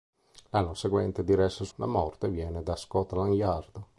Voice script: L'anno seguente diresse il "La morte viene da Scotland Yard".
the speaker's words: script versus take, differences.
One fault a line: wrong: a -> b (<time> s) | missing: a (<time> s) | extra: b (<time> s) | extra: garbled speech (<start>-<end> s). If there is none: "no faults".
no faults